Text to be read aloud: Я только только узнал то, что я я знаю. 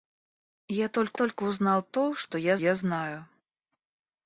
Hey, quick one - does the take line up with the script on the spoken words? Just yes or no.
yes